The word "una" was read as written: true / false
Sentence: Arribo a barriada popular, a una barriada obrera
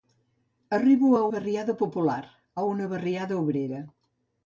true